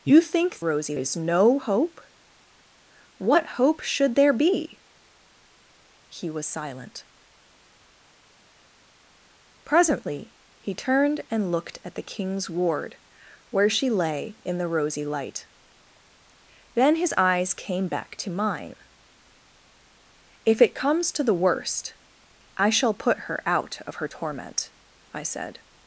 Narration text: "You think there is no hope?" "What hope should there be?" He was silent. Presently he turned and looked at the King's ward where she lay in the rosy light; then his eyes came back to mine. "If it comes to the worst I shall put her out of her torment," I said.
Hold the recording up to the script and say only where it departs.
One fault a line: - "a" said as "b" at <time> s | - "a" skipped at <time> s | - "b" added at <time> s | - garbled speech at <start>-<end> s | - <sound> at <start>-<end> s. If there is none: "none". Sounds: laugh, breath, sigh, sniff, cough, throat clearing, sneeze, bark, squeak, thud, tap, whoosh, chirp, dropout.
- "there" said as "rosy" at 0.6 s